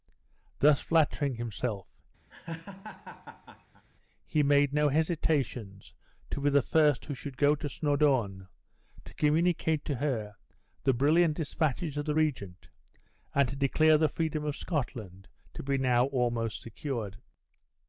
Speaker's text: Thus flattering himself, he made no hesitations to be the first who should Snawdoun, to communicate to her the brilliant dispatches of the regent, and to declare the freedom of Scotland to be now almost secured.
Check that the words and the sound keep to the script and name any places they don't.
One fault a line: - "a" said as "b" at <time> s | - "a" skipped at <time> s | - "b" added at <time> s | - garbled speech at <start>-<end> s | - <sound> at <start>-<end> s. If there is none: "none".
- laugh at 2.3-3.8 s
- "go to" added at 7.4 s